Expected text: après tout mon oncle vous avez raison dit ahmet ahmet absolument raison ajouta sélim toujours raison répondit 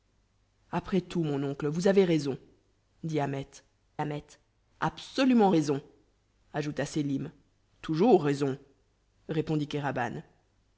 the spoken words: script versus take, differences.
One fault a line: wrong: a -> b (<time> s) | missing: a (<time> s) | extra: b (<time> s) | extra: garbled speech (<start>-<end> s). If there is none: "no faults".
no faults